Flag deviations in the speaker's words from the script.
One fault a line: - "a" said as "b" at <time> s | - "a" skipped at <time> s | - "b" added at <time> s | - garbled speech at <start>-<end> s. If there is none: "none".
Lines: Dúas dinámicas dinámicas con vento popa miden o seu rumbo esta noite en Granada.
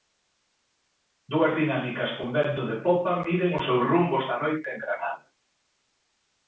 - "dinámicas" skipped at 2.2 s
- "de" added at 2.7 s